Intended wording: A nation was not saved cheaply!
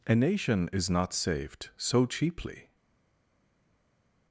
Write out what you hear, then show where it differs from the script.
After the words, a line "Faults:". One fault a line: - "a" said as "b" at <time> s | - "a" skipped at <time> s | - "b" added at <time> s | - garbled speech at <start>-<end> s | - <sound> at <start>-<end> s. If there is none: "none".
A nation is not saved so cheaply!
Faults:
- "was" said as "is" at 0.7 s
- "so" added at 1.8 s